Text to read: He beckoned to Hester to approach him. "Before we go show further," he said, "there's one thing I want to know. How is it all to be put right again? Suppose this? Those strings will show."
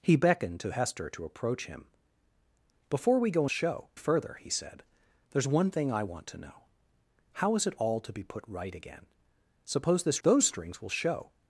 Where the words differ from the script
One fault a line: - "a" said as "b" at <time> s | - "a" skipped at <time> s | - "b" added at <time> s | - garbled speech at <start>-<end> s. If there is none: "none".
none